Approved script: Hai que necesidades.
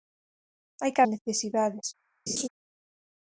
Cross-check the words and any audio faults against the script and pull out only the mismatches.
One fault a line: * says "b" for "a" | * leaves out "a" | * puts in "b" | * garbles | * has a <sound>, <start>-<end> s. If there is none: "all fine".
* has a laugh, 2.3-2.5 s